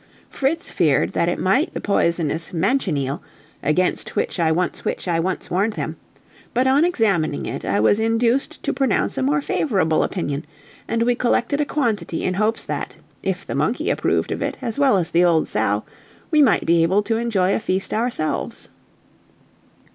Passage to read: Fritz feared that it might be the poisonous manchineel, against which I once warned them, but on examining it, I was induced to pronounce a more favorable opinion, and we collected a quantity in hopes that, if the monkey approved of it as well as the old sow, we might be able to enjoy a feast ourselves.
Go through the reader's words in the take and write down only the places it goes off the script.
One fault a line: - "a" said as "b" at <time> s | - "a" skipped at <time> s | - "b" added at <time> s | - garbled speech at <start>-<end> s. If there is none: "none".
- "be" skipped at 1.7 s
- "which I once" added at 4.8 s